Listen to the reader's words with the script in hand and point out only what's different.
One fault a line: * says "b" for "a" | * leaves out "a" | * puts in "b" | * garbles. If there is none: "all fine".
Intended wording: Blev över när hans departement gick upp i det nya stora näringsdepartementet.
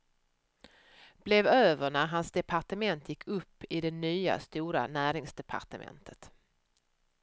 all fine